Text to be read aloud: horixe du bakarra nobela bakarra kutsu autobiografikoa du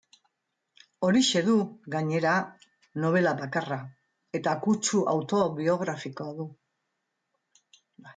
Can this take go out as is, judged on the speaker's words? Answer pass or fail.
fail